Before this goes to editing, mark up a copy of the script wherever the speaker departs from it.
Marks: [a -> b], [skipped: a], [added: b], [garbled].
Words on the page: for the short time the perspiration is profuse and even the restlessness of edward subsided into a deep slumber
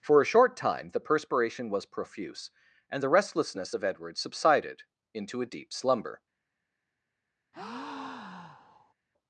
for [the -> a] short time the perspiration [is -> was] profuse and [skipped: even] the restlessness of edward subsided into a deep slumber